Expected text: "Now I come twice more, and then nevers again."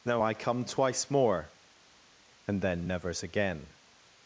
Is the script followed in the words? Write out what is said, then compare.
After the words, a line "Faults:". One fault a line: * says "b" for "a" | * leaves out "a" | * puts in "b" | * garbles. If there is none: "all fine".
"Now I come twice more, and then nevers again."
Faults:
all fine